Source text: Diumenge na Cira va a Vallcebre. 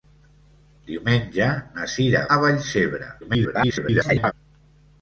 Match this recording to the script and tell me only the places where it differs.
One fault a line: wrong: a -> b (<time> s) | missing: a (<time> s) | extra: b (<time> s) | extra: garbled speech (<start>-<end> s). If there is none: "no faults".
missing: va (2.2 s)
extra: garbled speech (3.2-4.3 s)